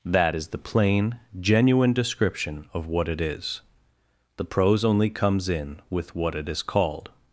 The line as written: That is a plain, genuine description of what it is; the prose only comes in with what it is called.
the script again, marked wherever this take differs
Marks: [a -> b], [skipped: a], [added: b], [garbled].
That is [a -> the] plain, genuine description of what it is; the prose only comes in with what it is called.